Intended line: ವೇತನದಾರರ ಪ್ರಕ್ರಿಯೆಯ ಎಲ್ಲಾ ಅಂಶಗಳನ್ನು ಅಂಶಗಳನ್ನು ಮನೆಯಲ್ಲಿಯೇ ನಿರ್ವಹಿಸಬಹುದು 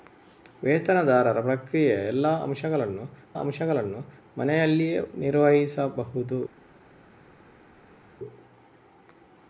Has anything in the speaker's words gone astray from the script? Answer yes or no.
no